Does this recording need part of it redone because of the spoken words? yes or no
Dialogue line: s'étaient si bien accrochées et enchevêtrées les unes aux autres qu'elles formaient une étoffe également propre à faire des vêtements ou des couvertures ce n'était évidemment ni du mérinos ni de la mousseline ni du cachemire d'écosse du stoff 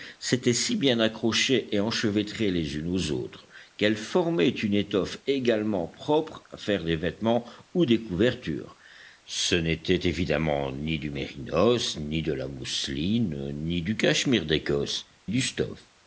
no